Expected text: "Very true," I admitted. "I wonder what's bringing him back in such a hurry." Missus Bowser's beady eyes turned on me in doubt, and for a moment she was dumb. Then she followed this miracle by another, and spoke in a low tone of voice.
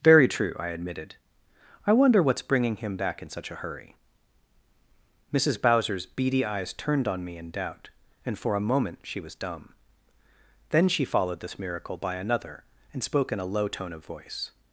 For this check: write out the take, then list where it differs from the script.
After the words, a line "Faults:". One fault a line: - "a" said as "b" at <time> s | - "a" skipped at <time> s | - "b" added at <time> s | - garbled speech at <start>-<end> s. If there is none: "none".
"Very true," I admitted. "I wonder what's bringing him back in such a hurry." Missus Bowser's beady eyes turned on me in doubt, and for a moment she was dumb. Then she followed this miracle by another, and spoke in a low tone of voice.
Faults:
none